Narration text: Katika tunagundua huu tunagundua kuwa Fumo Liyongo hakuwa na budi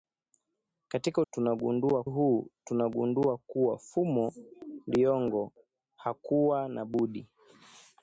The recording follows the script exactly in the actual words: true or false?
true